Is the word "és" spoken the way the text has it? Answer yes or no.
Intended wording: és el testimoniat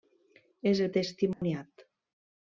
yes